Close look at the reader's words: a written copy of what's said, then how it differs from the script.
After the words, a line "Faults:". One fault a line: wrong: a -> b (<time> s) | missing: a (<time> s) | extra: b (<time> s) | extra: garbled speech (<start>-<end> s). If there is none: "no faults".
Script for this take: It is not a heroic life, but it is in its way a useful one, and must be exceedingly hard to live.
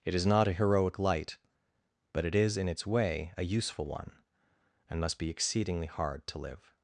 It is not a heroic light, but it is in its way a useful one, and must be exceedingly hard to live.
Faults:
wrong: life -> light (1.0 s)